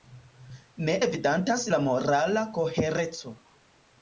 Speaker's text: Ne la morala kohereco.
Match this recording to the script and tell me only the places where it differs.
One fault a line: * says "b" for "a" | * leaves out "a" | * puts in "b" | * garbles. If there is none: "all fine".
* puts in "evidentas"